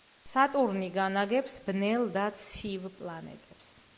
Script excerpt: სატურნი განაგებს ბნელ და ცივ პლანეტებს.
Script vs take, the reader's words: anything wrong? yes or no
no